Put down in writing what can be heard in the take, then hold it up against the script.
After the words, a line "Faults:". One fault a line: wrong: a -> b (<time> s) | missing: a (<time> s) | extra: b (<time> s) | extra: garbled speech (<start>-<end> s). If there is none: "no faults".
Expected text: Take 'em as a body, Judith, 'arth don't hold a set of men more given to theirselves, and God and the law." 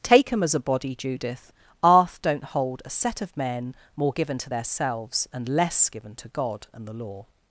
Take 'em as a body, Judith, 'arth don't hold a set of men more given to theirselves, and less given to God and the law."
Faults:
extra: less given to (5.5 s)